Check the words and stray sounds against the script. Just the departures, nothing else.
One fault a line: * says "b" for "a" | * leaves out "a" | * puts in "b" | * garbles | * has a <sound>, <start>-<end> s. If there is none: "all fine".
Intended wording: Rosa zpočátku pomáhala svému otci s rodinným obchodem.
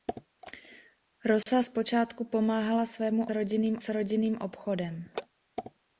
* has a dropout, 1.4-1.5 s
* says "rodinným" for "otci"